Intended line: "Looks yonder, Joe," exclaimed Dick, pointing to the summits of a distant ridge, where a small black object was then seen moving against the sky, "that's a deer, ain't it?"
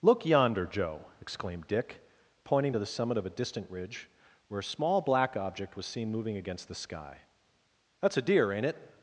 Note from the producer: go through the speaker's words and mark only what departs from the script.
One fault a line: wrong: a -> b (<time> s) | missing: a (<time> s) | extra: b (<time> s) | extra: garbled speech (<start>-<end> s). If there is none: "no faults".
wrong: Looks -> Look (0.0 s)
wrong: summits -> summit (2.9 s)
missing: then (5.9 s)